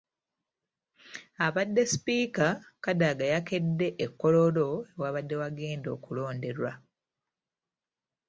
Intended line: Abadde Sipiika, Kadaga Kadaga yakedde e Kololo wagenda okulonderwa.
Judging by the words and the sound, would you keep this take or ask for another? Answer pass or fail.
fail